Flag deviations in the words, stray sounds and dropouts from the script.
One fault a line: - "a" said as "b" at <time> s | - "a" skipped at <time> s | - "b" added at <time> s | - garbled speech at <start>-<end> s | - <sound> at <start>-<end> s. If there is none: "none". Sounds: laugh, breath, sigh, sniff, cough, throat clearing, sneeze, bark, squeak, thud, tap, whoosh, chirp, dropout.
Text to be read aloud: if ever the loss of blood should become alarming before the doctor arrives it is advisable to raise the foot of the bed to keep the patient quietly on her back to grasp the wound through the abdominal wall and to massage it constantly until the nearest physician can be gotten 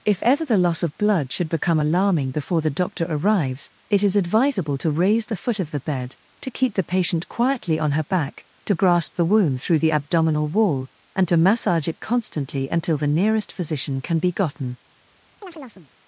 - chirp at 15.4-15.9 s